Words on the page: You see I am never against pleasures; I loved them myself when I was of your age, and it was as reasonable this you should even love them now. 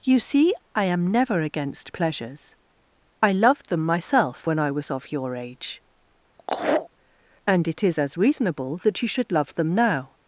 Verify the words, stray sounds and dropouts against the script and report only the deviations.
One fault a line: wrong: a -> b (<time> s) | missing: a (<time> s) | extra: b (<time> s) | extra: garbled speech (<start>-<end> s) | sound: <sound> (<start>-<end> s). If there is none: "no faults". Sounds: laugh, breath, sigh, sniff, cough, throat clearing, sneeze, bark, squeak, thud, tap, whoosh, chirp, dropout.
sound: laugh (6.4-6.9 s)
wrong: was -> is (7.8 s)
wrong: this -> that (8.8 s)
missing: even (9.3 s)